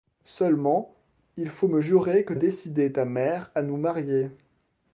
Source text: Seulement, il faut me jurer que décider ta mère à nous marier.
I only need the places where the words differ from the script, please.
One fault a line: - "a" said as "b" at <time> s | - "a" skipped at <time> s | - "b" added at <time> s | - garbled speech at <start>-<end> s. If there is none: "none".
none